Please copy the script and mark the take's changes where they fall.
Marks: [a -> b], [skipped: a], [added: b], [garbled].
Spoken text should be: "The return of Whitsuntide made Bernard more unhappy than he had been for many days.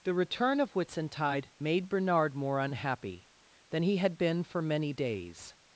"The return of Whitsuntide made Bernard more unhappy than he had been for many days.